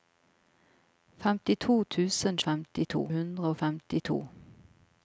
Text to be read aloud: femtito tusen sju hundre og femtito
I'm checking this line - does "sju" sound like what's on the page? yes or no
no